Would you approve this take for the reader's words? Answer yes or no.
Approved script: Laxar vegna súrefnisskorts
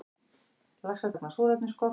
yes